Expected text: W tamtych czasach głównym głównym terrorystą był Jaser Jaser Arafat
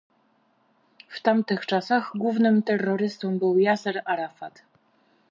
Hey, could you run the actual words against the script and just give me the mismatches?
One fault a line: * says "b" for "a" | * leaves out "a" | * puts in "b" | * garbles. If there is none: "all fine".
* leaves out "głównym"
* leaves out "Jaser"